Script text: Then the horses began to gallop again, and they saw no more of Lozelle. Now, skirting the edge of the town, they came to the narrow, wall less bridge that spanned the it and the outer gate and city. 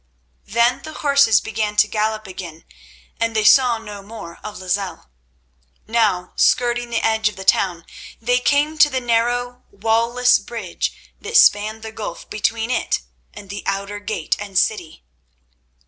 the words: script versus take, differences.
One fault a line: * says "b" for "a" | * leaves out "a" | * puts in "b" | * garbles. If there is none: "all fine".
* puts in "gulf between"